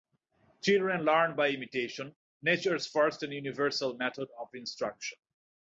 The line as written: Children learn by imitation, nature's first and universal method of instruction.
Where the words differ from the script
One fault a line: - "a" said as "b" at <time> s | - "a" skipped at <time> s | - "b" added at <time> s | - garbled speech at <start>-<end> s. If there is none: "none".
none